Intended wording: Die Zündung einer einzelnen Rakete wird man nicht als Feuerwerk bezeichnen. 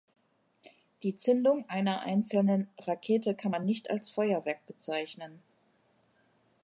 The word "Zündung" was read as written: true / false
true